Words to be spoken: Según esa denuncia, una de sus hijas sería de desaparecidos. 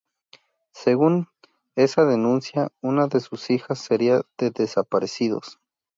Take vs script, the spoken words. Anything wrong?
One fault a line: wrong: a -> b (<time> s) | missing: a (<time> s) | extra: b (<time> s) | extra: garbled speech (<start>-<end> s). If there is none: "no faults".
no faults